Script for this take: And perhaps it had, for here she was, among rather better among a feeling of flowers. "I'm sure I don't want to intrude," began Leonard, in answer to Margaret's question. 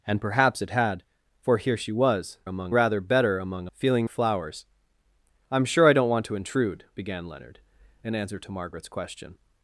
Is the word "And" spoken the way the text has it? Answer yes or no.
yes